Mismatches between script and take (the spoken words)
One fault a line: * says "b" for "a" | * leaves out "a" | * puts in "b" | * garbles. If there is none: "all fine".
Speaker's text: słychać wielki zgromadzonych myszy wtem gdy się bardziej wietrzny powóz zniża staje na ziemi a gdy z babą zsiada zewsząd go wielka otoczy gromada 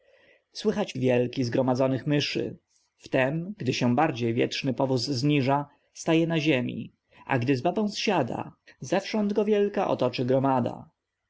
all fine